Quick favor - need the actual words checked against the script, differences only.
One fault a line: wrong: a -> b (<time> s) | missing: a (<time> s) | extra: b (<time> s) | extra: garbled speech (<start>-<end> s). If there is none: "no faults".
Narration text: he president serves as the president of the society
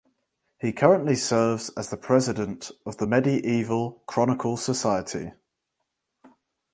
wrong: president -> currently (0.7 s)
extra: medieval chronicle (3.0 s)